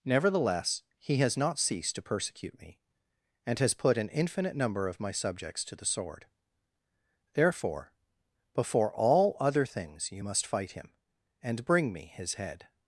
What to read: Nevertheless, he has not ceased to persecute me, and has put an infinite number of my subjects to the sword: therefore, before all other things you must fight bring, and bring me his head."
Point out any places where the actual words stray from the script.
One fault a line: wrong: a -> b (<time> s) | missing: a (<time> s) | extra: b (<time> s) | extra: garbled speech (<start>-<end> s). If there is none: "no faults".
wrong: bring -> him (10.7 s)